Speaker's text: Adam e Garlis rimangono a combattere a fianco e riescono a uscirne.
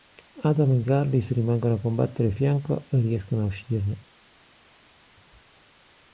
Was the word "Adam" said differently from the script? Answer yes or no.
no